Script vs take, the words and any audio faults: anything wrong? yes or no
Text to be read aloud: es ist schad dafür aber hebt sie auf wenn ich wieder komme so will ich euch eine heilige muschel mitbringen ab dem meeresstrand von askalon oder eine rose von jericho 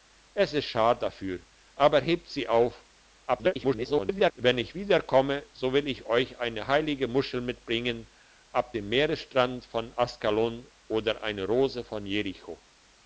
yes